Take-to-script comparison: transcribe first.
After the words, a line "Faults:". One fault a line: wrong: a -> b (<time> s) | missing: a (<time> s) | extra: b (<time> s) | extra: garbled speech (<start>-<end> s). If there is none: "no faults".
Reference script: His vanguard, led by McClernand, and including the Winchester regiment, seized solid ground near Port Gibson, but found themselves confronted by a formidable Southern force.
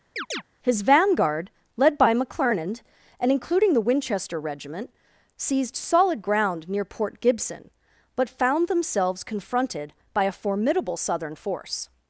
His vanguard, led by McClernand, and including the Winchester regiment, seized solid ground near Port Gibson, but found themselves confronted by a formidable Southern force.
Faults:
no faults